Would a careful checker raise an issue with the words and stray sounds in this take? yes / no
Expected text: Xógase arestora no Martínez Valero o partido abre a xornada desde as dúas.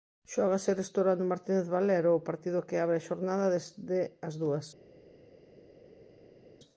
yes